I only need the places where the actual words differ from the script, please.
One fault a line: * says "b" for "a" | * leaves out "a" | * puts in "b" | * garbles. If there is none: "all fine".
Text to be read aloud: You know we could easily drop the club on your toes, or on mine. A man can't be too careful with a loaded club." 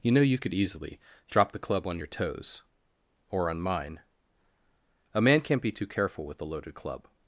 * says "you" for "we"